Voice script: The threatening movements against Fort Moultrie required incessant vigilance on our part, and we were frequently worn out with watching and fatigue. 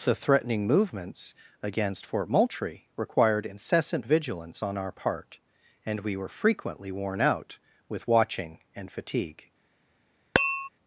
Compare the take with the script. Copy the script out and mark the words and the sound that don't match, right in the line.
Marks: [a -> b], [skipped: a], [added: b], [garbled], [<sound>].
The threatening movements against Fort Moultrie required incessant vigilance on our part, and we were frequently worn out with watching and fatigue. [tap]